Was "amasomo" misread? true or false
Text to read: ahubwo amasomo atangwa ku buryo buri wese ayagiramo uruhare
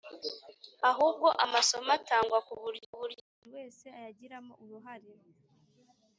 false